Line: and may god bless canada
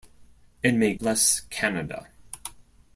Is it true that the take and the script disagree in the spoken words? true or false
true